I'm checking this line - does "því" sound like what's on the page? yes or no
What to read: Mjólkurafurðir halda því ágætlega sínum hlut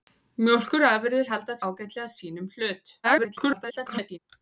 no